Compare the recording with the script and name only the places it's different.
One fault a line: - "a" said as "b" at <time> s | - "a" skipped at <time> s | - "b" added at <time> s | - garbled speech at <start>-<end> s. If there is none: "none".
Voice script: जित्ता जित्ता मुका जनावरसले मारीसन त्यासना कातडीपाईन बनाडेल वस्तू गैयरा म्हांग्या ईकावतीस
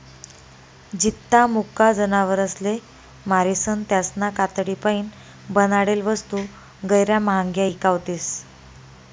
- "जित्ता" skipped at 1.4 s